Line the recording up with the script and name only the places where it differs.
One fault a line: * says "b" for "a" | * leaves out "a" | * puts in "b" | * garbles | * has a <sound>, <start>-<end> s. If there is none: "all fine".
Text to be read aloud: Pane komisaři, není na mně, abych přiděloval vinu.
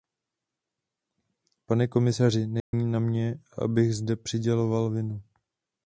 * has a dropout, 2.6-2.7 s
* puts in "zde"